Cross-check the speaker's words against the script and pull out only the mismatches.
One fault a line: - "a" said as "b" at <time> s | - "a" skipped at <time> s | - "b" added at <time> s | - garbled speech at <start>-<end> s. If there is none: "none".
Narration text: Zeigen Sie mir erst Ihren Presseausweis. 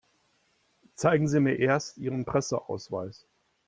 none